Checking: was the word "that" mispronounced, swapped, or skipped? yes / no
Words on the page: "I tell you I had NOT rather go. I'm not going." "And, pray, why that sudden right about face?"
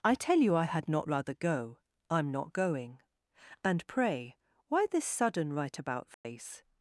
yes